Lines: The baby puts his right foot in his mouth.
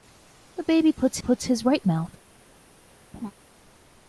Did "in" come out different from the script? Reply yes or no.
yes